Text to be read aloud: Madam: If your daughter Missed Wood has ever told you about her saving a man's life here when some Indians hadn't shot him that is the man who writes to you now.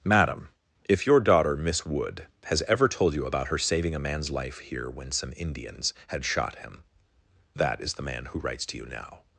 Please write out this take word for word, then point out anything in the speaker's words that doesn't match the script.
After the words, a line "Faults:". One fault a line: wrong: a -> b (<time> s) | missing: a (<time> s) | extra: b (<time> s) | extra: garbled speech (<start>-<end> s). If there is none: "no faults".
Madam: If your daughter Miss Wood has ever told you about her saving a man's life here when some Indians had shot him that is the man who writes to you now.
Faults:
wrong: Missed -> Miss (1.6 s)
wrong: hadn't -> had (6.1 s)